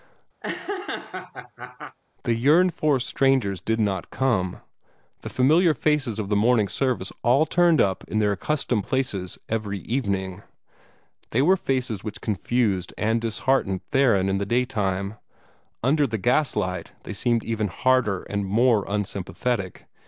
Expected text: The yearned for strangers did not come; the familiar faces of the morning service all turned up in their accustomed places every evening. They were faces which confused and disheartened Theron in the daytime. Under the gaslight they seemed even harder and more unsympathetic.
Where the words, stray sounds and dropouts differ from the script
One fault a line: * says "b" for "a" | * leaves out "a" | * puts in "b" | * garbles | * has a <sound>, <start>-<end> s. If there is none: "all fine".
* has a laugh, 0.4-2.0 s